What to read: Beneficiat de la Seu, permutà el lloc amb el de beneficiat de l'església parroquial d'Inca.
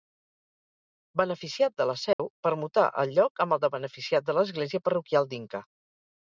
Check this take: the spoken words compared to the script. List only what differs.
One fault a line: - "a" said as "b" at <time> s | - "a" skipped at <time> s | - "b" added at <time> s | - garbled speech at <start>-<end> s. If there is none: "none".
none